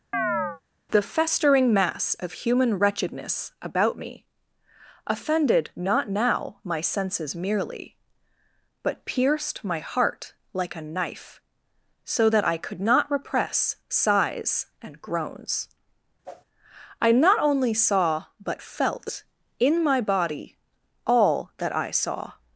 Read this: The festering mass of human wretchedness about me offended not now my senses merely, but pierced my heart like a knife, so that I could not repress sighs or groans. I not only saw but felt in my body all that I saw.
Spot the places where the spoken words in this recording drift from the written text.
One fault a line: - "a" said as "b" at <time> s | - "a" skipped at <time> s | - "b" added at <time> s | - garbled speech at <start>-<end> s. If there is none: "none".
- "or" said as "and" at 14.8 s